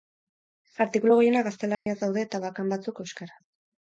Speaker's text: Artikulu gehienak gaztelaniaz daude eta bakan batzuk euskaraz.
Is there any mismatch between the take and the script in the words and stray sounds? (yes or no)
yes